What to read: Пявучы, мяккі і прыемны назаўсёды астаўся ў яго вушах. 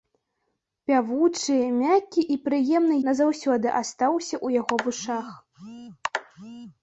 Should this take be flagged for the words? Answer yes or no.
no